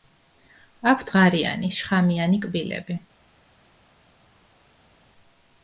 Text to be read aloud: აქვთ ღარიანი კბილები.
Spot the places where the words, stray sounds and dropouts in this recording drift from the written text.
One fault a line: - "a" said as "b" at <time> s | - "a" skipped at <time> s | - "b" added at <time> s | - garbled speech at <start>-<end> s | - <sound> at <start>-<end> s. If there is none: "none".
- "შხამიანი" added at 1.8 s